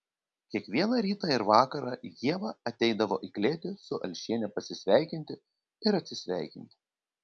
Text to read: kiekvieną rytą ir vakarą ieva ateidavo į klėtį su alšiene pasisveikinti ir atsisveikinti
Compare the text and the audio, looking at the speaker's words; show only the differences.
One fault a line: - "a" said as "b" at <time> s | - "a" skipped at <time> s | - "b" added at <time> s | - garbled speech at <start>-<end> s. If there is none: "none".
none